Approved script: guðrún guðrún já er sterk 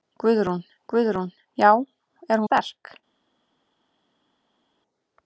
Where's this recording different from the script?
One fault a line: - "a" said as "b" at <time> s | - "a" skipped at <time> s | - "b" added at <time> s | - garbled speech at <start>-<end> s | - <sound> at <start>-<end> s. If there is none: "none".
none